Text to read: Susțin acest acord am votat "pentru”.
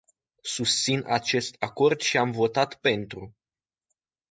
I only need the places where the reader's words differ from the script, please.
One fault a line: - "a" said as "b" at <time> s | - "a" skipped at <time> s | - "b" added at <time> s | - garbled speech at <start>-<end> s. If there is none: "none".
- "și" added at 2.0 s